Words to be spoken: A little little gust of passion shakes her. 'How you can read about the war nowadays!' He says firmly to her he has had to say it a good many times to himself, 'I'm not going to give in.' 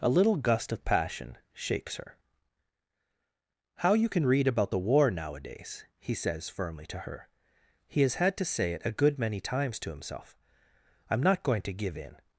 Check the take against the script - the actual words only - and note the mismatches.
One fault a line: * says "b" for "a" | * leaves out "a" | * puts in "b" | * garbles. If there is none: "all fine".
* leaves out "little"